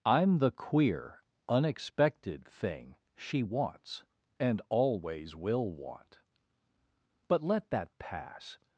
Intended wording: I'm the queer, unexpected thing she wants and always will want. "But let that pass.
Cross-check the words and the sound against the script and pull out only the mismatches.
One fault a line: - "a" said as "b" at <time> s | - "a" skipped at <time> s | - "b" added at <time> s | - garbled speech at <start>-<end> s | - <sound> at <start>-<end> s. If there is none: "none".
none